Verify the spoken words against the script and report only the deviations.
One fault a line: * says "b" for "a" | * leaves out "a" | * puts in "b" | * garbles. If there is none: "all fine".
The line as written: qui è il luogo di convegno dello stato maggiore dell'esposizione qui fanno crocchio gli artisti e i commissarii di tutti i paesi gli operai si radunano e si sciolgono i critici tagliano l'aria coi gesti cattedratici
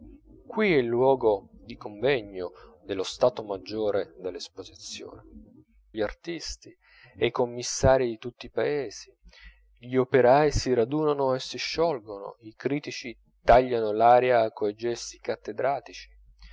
* leaves out "qui fanno crocchio"